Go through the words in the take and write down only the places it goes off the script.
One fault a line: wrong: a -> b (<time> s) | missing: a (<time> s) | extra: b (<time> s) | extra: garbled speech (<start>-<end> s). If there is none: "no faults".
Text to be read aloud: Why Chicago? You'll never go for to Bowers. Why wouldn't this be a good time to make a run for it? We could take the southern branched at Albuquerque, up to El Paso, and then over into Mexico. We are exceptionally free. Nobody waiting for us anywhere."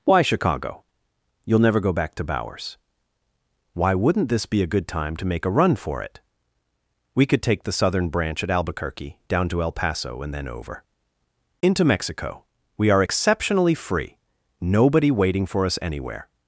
wrong: for -> back (1.9 s)
wrong: branched -> branch (8.1 s)
wrong: up -> down (9.3 s)